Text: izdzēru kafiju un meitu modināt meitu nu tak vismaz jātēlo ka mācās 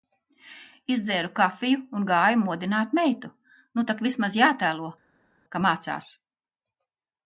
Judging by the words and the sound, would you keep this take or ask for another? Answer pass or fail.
fail